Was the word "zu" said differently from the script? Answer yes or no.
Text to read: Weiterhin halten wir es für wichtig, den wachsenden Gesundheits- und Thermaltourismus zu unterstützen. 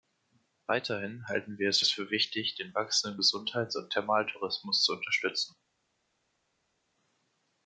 no